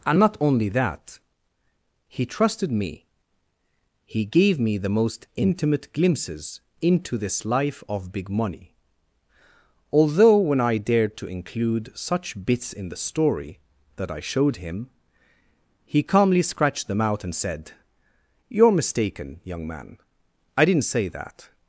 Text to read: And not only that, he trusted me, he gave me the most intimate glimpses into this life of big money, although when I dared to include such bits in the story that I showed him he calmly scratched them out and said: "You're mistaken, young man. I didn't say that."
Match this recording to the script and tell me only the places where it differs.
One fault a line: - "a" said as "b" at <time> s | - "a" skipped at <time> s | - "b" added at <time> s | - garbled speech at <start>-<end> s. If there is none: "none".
none